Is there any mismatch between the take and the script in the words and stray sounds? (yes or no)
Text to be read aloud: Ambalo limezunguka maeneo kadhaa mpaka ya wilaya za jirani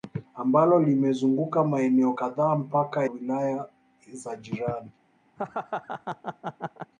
yes